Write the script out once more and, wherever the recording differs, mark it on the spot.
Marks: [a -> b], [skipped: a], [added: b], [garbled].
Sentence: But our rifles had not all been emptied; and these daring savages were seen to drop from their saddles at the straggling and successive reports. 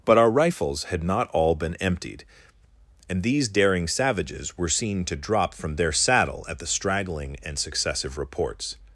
But our rifles had not all been emptied; and these daring savages were seen to drop from their [saddles -> saddle] at the straggling and successive reports.